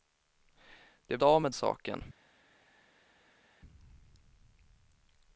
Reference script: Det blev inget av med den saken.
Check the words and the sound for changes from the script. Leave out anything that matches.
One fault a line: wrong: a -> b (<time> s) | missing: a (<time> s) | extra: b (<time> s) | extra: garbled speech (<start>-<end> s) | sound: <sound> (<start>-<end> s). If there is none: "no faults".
missing: blev inget (1.2 s)
missing: den (1.5 s)